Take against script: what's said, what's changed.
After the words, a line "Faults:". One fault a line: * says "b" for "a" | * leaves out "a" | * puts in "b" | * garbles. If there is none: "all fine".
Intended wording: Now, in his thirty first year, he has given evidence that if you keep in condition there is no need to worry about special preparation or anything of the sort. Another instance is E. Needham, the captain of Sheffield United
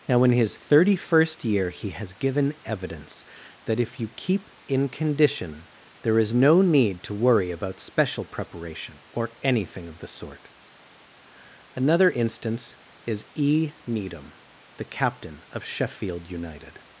Now, in his thirty first year, he has given evidence that if you keep in condition there is no need to worry about special preparation or anything of the sort. Another instance is E. Needham, the captain of Sheffield United
Faults:
all fine